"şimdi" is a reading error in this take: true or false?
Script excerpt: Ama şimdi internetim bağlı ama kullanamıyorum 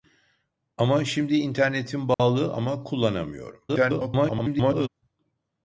false